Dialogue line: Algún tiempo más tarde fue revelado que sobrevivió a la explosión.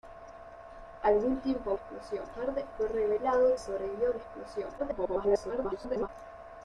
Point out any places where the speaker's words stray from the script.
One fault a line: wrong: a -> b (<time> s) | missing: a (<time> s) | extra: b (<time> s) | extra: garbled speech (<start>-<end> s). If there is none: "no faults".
wrong: más -> explosión (1.7 s)
missing: que (3.6 s)
extra: garbled speech (4.8-6.1 s)